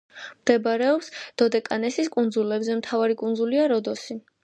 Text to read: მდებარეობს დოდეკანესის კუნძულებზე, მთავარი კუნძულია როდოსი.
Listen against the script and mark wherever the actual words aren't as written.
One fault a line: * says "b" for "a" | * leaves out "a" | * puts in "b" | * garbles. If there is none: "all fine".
all fine